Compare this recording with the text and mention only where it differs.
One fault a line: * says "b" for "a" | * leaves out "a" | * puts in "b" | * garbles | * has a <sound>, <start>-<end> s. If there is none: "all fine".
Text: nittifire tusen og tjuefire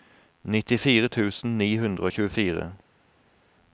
* puts in "ni hundre"